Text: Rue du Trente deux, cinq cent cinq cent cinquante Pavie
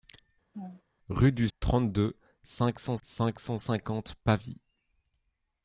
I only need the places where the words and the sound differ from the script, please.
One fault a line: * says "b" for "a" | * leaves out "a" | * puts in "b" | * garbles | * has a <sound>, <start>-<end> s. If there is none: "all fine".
* has a laugh, 0.5-0.8 s